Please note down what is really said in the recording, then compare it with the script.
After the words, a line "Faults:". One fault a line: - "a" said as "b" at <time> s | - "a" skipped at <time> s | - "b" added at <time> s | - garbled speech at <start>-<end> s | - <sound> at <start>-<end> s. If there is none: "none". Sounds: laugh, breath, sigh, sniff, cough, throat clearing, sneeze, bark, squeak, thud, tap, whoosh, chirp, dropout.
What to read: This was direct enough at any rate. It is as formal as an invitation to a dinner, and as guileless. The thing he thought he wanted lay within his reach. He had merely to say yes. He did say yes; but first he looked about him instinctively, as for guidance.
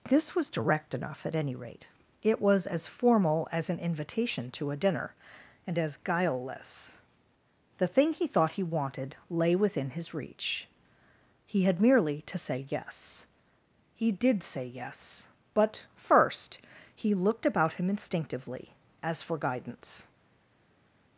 This was direct enough at any rate. It was as formal as an invitation to a dinner, and as guileless. The thing he thought he wanted lay within his reach. He had merely to say yes. He did say yes; but first he looked about him instinctively, as for guidance.
Faults:
- "is" said as "was" at 2.4 s